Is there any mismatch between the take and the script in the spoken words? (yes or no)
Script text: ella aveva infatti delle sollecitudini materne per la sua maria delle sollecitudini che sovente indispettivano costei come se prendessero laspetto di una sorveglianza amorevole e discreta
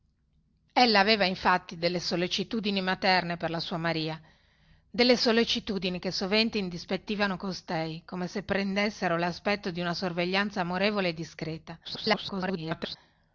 yes